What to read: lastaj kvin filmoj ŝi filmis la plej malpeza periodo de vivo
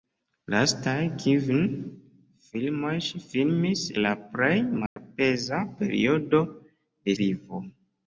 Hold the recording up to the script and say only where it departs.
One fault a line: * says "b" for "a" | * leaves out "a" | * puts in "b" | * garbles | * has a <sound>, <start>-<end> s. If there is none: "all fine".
* has a dropout, 4.9-5.0 s